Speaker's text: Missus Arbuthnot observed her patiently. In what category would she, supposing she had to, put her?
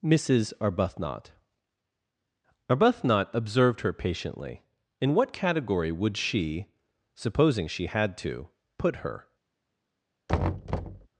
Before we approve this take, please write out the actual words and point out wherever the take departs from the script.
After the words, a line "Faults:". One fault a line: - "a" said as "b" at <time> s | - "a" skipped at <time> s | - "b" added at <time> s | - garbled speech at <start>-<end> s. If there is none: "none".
Missus Arbuthnot Arbuthnot observed her patiently. In what category would she, supposing she had to, put her?
Faults:
- "Arbuthnot" added at 2.7 s